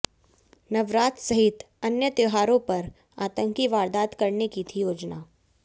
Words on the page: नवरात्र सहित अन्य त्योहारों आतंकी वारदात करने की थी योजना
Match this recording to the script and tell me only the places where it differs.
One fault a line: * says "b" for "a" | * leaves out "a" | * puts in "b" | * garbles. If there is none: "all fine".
* puts in "पर"